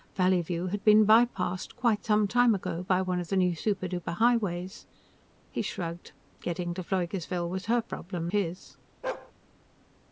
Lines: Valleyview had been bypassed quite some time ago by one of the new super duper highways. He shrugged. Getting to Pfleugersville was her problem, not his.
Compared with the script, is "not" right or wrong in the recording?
wrong